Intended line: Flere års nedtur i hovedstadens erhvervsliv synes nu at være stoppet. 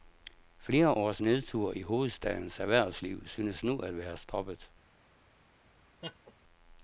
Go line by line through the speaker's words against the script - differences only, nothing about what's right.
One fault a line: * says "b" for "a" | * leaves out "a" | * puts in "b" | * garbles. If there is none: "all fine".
all fine